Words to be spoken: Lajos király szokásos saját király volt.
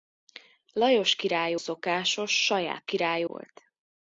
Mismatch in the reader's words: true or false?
false